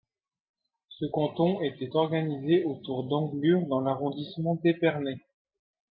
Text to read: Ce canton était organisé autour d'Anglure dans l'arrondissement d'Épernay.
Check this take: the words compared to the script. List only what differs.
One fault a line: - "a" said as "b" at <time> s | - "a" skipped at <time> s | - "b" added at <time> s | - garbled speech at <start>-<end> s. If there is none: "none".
none